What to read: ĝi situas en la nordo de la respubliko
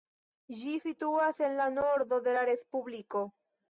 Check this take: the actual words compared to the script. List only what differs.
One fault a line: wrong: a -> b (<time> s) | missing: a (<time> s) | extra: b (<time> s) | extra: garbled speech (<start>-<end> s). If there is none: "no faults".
no faults